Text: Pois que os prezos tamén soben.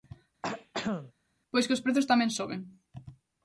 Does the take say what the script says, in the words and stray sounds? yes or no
no